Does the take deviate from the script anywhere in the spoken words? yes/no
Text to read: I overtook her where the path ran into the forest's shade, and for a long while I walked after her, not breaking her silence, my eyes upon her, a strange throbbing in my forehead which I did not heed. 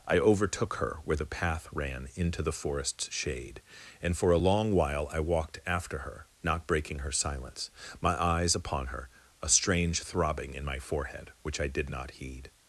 no